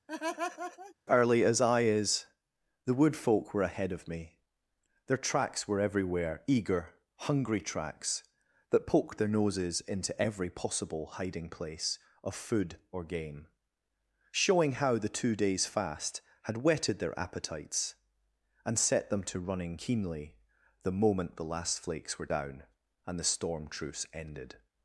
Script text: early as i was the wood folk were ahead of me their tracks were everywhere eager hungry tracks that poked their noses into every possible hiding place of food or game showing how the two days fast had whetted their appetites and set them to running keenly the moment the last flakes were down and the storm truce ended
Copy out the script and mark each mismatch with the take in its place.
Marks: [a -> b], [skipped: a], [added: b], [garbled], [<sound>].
[laugh] early as i [was -> is] the wood folk were ahead of me their tracks were everywhere eager hungry tracks that poked their noses into every possible hiding place of food or game showing how the two days fast had whetted their appetites and set them to running keenly the moment the last flakes were down and the storm truce ended